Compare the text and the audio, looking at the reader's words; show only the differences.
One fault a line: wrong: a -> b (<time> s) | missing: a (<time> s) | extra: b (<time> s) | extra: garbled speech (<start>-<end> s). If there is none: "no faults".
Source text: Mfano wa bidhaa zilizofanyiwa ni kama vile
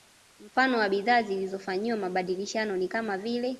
extra: mabadilishano (2.0 s)